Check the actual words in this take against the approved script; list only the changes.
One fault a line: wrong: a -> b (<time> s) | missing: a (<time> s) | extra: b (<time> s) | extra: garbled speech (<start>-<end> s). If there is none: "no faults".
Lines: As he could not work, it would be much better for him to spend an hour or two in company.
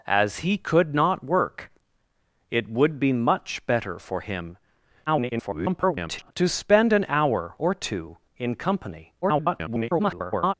extra: garbled speech (5.1-6.3 s)
extra: garbled speech (9.2-10.5 s)